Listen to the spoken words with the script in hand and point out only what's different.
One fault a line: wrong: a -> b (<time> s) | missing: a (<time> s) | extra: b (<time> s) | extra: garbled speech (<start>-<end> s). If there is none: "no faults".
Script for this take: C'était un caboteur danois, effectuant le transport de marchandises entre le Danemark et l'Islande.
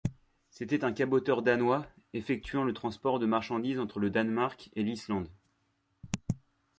no faults